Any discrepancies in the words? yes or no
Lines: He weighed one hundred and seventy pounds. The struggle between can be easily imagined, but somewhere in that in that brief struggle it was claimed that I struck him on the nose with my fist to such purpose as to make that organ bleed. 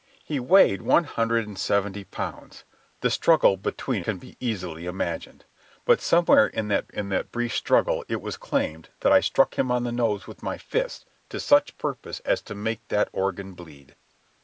no